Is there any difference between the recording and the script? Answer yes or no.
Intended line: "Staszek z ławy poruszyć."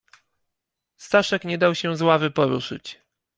yes